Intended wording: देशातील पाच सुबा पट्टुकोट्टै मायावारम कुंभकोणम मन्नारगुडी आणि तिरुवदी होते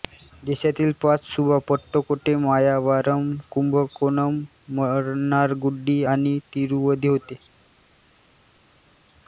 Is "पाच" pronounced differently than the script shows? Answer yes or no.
no